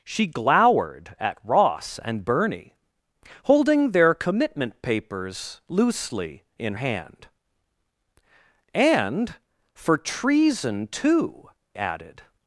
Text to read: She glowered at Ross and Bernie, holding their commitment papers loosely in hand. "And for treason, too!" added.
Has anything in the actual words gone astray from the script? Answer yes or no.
no